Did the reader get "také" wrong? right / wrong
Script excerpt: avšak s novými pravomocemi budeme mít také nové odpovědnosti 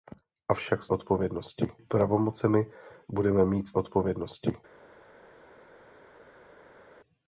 wrong